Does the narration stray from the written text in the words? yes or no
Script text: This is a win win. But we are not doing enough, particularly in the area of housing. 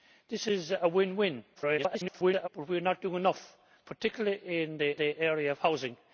yes